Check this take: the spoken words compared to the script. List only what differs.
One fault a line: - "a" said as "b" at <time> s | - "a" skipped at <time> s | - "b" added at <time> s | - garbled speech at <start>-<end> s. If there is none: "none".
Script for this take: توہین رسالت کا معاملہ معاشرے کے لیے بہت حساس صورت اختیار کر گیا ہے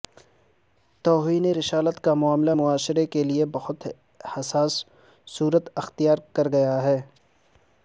none